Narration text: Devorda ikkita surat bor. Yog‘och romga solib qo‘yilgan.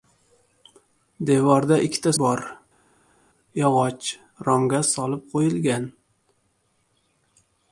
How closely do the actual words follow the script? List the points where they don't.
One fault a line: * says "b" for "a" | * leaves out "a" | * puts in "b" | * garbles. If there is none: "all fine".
* leaves out "surat"